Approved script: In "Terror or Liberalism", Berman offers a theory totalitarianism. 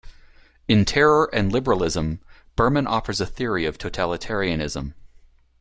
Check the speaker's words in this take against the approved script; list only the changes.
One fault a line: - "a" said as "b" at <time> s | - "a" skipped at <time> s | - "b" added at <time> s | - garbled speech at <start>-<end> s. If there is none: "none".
- "or" said as "and" at 1.3 s
- "of" added at 3.6 s